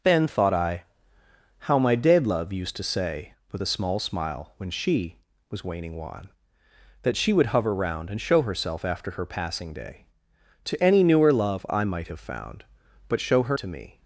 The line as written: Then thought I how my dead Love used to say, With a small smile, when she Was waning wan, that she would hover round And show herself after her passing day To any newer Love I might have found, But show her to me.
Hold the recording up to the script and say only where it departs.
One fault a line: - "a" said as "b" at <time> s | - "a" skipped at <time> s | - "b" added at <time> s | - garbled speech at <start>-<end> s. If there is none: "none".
none